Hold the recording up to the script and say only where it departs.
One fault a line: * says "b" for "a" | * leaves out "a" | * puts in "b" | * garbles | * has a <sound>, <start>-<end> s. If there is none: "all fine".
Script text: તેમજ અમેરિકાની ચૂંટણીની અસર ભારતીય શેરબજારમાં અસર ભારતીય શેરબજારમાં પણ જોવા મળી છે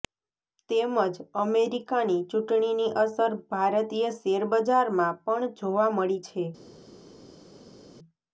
* leaves out "અસર ભારતીય શેરબજારમાં"